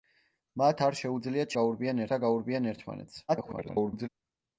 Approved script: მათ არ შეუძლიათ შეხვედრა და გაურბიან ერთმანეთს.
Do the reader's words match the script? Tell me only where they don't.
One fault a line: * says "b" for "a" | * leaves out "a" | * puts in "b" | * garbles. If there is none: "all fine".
* says "გაურბიან" for "შეხვედრა"
* garbles